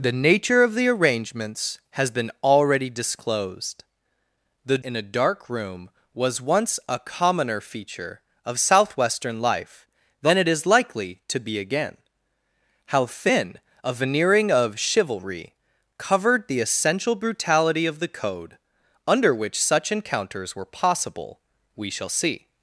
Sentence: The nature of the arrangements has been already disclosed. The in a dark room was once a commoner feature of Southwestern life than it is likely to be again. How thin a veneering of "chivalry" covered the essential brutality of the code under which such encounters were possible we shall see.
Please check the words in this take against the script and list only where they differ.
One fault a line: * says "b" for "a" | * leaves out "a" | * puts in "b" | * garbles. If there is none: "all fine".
all fine